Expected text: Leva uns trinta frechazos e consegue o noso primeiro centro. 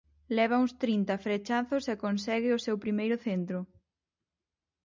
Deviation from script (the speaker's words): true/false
true